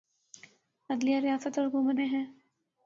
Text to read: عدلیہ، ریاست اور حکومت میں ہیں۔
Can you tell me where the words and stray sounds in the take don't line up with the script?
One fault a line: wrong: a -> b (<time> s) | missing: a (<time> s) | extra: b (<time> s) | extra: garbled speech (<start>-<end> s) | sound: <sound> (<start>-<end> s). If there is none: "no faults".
no faults